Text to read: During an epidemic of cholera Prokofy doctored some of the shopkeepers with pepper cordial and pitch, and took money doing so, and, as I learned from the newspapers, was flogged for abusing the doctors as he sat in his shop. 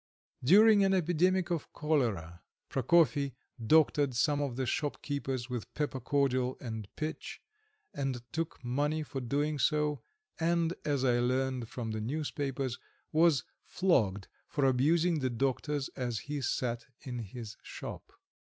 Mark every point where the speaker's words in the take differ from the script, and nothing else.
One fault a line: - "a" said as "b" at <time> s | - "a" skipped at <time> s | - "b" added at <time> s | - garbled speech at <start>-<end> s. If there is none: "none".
- "for" added at 9.0 s